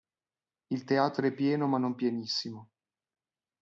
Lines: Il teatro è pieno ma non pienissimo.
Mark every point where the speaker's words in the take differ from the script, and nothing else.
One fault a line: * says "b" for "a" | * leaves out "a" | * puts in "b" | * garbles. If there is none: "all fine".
all fine